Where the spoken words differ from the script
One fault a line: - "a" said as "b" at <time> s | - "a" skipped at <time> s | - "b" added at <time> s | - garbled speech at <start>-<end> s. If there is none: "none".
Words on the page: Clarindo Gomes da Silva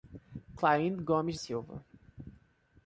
- "da" skipped at 1.4 s